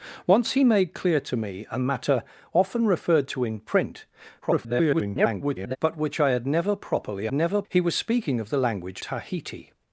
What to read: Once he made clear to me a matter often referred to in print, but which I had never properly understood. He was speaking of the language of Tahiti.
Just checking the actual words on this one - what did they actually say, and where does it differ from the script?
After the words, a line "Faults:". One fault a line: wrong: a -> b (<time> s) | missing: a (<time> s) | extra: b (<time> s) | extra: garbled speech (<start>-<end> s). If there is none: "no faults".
Once he made clear to me a matter often referred to in print, [garbled] but which I had never properly never. He was speaking of the language Tahiti.
Faults:
extra: garbled speech (4.4-5.8 s)
wrong: understood -> never (7.3 s)
missing: of (9.0 s)